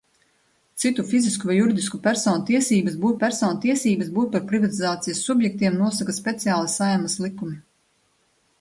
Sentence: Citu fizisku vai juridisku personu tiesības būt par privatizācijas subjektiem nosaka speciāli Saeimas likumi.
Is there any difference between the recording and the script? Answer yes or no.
yes